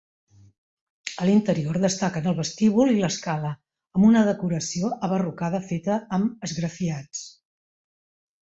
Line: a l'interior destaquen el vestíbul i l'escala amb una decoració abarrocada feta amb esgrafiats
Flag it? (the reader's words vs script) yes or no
no